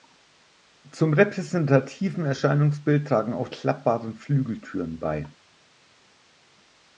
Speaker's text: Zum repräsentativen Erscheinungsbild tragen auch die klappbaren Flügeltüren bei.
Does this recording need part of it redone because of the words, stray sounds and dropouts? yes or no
yes